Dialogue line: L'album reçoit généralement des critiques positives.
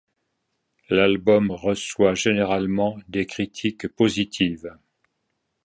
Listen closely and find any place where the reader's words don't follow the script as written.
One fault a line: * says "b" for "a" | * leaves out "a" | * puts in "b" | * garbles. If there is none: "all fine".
all fine